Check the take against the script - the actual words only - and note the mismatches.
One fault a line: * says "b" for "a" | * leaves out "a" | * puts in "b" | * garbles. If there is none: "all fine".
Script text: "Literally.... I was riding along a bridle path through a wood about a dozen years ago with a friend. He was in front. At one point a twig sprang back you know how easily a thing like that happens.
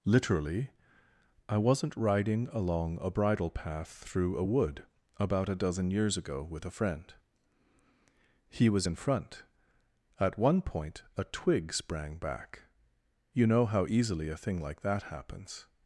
* says "wasn't" for "was"